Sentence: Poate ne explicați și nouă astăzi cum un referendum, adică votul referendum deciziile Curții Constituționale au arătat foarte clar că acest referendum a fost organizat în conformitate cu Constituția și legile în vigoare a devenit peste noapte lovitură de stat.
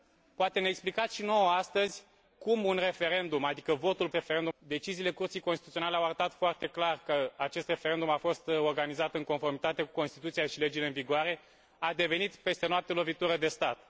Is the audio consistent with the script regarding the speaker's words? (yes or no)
yes